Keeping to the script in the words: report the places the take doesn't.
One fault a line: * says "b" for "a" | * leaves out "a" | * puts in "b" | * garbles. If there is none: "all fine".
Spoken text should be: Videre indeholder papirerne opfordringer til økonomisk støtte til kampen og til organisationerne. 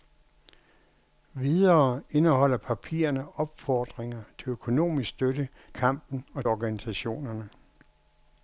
* leaves out "til"
* leaves out "til"